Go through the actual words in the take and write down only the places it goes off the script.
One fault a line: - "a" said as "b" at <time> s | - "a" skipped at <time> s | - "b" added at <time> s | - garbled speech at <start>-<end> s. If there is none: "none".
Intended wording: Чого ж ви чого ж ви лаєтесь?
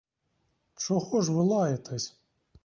- "чого ж ви" skipped at 1.4 s